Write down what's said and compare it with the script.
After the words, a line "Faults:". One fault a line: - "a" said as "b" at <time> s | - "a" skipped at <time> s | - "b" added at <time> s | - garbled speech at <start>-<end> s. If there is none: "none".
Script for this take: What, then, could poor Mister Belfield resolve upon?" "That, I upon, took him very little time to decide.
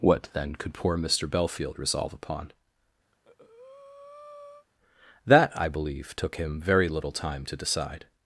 What, then, could poor Mister Belfield resolve upon?" "That, I believe, took him very little time to decide.
Faults:
- "upon" said as "believe" at 5.7 s